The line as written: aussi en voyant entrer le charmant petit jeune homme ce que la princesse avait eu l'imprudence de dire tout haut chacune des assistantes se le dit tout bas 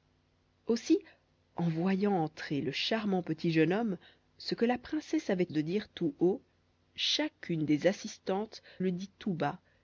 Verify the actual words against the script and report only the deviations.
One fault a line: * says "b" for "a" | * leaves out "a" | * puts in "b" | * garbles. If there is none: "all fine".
* leaves out "eu l'imprudence"
* leaves out "se"